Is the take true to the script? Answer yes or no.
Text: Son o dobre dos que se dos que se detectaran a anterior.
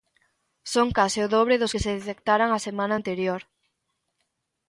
no